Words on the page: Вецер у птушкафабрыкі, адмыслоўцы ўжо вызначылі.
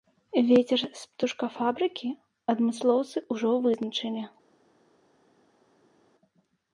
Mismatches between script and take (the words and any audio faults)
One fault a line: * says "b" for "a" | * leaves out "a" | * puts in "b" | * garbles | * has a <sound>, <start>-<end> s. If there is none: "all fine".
* says "з" for "у"